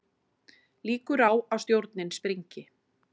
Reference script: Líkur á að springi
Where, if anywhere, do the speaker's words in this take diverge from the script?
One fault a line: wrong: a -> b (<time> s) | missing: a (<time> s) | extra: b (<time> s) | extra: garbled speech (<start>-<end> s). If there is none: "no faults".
extra: stjórnin (1.6 s)